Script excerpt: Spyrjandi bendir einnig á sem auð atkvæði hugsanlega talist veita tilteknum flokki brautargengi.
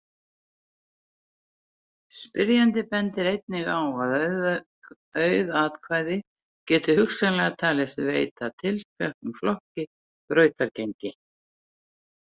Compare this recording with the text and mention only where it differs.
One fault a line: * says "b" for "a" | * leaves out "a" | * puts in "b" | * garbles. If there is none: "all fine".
* says "að" for "sem"
* puts in "geti"